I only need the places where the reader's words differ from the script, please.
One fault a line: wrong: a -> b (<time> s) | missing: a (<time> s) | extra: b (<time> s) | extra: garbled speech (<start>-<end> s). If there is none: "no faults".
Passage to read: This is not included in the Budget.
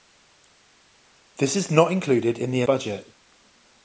no faults